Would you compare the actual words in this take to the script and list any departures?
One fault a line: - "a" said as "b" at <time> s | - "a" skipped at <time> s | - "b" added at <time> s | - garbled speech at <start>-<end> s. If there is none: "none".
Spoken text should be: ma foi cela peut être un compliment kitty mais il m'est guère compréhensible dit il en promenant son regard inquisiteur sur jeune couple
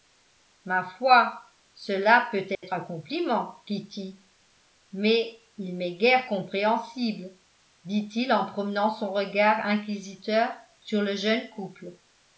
- "le" added at 11.0 s